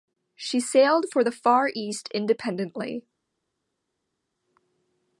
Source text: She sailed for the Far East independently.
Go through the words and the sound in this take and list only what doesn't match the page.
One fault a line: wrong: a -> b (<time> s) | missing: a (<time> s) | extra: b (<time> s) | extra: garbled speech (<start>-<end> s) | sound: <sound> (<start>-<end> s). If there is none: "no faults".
no faults